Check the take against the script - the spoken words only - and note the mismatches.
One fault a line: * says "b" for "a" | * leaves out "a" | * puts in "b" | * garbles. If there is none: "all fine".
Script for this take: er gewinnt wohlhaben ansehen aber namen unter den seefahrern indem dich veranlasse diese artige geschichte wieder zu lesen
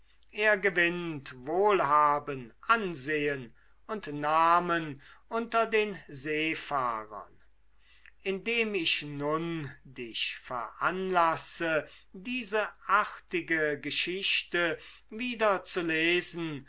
* says "und" for "aber"
* puts in "ich nun"